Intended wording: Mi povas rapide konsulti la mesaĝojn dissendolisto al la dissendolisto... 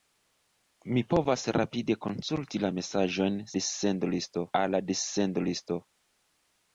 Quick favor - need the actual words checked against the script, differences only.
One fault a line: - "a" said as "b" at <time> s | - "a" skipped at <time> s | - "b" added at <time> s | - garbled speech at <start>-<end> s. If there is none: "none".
none